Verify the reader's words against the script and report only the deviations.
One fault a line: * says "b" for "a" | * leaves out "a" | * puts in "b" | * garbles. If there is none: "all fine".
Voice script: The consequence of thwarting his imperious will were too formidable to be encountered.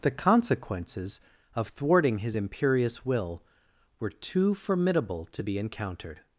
* says "consequences" for "consequence"